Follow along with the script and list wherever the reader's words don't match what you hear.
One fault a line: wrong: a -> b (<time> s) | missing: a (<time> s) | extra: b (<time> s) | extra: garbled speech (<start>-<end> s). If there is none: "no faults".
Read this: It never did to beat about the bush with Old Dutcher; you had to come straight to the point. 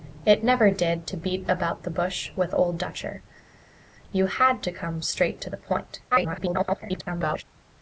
extra: garbled speech (6.1-7.4 s)